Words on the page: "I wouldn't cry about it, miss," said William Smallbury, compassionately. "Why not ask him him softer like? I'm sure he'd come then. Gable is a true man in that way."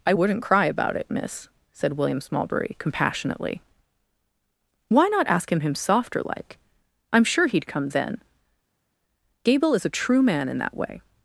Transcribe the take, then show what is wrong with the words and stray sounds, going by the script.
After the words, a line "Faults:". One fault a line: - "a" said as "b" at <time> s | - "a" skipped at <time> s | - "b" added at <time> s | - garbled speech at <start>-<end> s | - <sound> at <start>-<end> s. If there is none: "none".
"I wouldn't cry about it, miss," said William Smallbury, compassionately. "Why not ask him him softer like? I'm sure he'd come then. Gable is a true man in that way."
Faults:
none